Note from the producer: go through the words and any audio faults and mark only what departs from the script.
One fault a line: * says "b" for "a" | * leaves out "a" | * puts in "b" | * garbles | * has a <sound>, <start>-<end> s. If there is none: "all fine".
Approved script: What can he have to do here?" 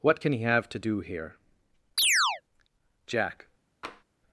* has a chirp, 2.0-2.4 s
* puts in "Jack"
* has a tap, 3.8-4.0 s